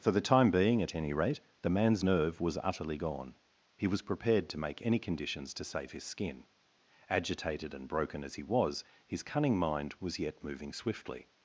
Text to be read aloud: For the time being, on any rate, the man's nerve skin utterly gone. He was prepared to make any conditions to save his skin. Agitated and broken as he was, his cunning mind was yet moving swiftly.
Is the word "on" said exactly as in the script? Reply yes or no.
no